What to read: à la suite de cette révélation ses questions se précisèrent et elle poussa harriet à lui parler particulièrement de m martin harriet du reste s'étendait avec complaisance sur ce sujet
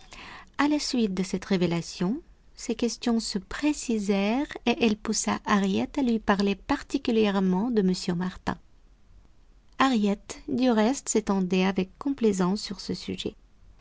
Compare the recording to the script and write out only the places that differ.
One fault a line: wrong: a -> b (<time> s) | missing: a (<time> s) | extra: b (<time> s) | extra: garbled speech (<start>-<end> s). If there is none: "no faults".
no faults